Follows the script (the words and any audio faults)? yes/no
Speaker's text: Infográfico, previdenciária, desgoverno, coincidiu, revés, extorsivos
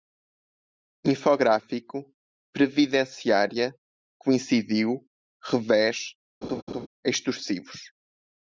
no